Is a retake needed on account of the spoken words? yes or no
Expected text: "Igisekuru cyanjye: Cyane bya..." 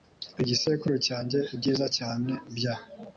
yes